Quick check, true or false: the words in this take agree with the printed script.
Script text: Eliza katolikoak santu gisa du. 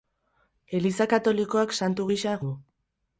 true